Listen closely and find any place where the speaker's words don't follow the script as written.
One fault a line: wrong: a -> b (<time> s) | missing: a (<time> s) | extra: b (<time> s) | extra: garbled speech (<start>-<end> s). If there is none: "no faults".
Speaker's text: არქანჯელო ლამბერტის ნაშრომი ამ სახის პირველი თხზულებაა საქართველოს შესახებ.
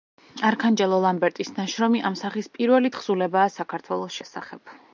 no faults